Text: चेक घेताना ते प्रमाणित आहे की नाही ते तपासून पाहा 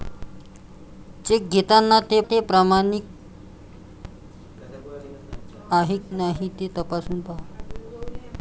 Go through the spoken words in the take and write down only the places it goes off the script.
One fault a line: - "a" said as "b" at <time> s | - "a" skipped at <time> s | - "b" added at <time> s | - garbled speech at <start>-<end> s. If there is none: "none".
- "ते" added at 2.2 s
- "की" skipped at 6.0 s